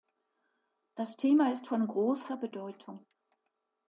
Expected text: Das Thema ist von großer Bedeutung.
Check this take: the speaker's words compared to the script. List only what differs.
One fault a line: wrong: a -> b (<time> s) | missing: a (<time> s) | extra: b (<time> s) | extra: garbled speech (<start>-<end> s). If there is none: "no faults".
no faults